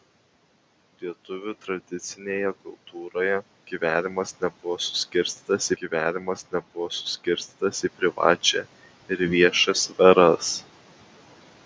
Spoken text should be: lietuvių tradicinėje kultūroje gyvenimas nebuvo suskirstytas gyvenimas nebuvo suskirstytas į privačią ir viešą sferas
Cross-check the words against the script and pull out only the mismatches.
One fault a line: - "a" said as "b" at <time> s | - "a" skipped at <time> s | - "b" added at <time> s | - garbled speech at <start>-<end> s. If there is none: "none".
none